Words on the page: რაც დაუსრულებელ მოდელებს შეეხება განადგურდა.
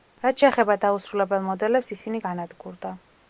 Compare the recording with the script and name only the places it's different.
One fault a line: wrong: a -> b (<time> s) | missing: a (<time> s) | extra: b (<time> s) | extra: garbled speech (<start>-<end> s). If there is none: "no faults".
extra: შეეხება (0.4 s)
wrong: შეეხება -> ისინი (2.0 s)